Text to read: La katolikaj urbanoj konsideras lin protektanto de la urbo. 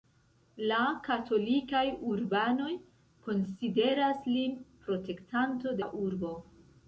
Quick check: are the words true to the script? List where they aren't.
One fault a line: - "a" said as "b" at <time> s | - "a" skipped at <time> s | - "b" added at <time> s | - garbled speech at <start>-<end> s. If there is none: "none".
- "de" skipped at 5.8 s